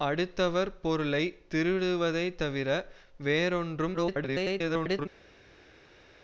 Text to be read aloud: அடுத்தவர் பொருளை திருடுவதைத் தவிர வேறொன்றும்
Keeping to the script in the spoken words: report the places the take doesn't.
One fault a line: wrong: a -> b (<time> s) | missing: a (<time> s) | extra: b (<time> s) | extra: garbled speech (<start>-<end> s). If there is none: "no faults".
extra: garbled speech (3.9-5.1 s)